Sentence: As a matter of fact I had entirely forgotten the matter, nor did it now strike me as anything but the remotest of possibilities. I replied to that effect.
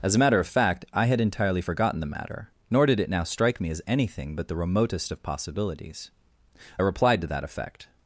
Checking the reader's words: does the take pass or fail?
pass